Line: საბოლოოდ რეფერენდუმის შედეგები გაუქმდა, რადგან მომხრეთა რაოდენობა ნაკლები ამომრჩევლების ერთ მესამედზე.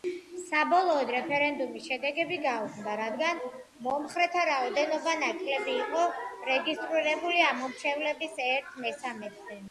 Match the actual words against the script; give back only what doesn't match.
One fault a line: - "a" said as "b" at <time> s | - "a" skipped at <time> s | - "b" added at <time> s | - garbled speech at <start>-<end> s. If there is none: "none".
- "იყო რეგისტრირებული" added at 5.8 s